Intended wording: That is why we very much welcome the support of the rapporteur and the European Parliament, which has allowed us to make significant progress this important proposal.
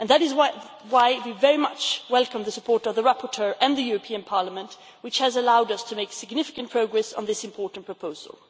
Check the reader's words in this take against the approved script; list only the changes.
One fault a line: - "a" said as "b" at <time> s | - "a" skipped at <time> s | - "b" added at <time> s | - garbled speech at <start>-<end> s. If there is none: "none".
- "on" added at 7.1 s